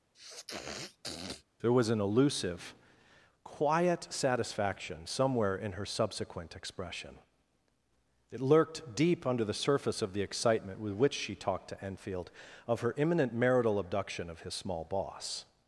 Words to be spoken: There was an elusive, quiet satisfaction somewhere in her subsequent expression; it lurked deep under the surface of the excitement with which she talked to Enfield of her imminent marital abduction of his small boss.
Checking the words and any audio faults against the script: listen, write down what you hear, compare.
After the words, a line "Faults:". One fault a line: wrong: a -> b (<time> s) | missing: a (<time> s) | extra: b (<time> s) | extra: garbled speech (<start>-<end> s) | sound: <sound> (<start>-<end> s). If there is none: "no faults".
There was an elusive, quiet satisfaction somewhere in her subsequent expression; it lurked deep under the surface of the excitement with which she talked to Enfield of her imminent marital abduction of his small boss.
Faults:
sound: sniff (0.1-1.4 s)